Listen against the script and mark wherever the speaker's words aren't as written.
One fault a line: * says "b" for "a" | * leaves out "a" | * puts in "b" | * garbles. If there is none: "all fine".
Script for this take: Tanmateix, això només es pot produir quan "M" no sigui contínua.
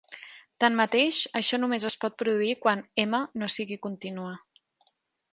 all fine